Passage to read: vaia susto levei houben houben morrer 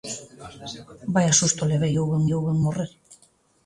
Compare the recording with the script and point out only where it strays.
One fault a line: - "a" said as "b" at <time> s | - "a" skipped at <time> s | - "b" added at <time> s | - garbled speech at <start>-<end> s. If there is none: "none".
none